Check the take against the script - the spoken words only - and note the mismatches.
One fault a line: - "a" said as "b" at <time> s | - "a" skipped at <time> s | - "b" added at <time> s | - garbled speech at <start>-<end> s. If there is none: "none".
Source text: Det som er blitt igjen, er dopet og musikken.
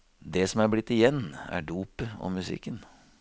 none